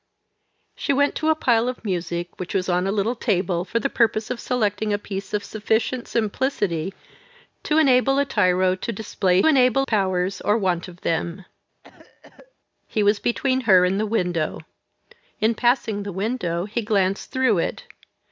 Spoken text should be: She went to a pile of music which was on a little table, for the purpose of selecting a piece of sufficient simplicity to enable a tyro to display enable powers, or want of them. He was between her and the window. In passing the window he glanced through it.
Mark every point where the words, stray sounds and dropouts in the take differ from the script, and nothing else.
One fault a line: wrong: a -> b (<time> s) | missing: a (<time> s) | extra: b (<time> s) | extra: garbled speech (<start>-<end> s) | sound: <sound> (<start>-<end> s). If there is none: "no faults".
sound: cough (11.8-12.5 s)